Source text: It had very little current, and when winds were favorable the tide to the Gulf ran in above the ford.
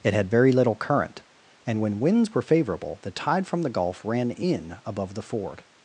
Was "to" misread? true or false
true